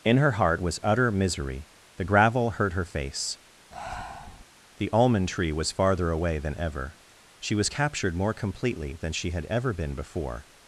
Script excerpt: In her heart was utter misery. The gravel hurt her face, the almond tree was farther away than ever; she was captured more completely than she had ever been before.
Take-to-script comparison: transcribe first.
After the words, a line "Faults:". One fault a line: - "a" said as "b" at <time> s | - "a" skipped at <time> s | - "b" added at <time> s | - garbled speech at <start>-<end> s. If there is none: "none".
In her heart was utter misery. The gravel hurt her face, the almond tree was farther away than ever; she was captured more completely than she had ever been before.
Faults:
none